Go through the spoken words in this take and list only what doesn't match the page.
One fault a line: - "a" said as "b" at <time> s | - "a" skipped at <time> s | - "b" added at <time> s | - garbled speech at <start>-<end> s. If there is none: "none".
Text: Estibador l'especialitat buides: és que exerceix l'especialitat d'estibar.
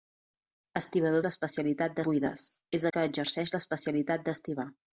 none